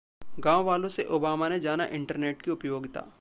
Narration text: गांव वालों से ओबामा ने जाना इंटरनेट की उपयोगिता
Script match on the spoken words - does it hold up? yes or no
yes